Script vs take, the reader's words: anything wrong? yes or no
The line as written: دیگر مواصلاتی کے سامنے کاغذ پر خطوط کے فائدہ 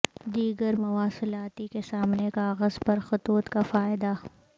yes